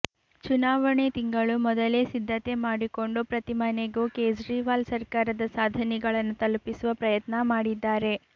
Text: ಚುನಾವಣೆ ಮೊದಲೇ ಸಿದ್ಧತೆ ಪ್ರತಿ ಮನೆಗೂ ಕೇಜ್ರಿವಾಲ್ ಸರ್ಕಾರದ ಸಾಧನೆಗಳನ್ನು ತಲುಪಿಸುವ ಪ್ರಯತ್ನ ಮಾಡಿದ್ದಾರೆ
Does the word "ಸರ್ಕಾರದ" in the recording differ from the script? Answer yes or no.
no